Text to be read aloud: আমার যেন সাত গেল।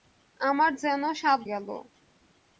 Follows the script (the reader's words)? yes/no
yes